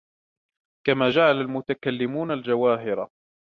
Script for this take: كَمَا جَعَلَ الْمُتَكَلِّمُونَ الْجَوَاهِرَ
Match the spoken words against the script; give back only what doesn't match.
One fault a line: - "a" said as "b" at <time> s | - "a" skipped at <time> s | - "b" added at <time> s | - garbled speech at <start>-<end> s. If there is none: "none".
none